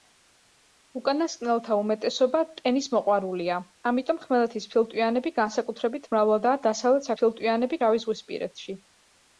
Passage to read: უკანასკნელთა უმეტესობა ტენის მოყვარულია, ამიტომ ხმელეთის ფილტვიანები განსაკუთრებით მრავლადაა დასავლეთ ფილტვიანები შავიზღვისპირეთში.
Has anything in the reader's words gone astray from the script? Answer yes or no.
no